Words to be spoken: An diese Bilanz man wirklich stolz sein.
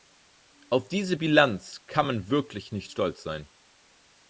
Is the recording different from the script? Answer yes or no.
yes